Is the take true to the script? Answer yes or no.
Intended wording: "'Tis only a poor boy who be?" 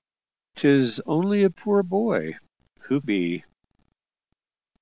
yes